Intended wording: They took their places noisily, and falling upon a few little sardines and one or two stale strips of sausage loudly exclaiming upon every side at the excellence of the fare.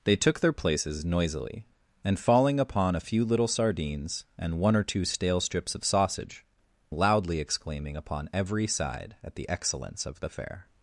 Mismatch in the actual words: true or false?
false